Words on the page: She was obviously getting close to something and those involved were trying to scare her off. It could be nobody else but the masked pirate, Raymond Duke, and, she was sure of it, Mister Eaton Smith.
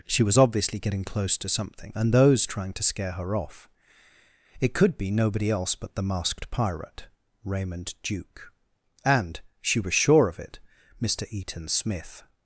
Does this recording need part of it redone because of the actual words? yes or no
yes